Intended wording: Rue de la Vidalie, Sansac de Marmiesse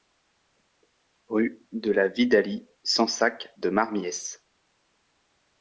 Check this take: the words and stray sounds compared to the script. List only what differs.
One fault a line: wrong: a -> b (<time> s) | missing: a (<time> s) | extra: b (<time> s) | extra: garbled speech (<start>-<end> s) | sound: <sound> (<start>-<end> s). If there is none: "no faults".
no faults